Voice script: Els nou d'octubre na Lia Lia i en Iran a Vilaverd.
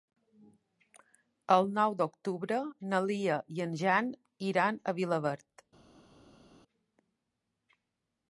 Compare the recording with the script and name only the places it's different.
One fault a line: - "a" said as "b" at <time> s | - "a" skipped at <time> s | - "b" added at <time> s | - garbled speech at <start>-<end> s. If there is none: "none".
- "Els" said as "El" at 1.6 s
- "Lia" skipped at 3.4 s
- "Jan" added at 3.8 s